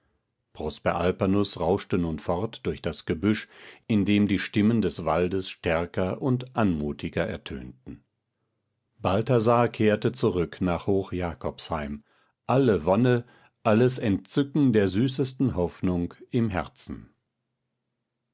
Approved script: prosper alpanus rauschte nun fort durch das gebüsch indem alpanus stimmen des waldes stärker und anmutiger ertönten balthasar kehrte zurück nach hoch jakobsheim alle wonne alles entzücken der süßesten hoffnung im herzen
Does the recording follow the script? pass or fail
fail